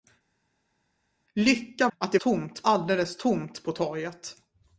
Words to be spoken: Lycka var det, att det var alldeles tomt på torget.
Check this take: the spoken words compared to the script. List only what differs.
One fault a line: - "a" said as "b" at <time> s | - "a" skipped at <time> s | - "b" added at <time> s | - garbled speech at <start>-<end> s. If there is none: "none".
- "var det" skipped at 1.9 s
- "var" said as "tomt" at 2.2 s